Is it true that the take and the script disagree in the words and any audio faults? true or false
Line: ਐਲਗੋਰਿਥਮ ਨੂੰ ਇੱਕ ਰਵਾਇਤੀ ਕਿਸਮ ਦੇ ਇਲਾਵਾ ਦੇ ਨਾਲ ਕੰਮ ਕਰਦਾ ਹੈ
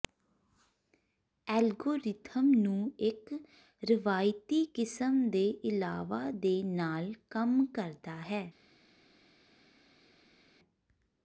false